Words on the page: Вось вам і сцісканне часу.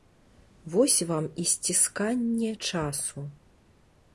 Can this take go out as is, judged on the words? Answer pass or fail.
pass